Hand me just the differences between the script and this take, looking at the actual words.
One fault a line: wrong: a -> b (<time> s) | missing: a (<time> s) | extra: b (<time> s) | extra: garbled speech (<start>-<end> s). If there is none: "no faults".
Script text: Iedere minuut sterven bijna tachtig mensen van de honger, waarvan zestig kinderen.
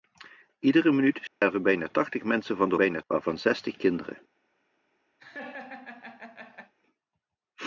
wrong: honger -> bijna (2.7 s)